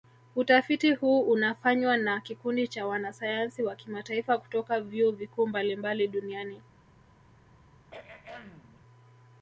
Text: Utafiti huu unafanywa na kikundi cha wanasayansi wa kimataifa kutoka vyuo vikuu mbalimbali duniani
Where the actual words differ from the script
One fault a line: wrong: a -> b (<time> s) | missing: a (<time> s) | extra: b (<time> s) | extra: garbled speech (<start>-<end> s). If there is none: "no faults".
no faults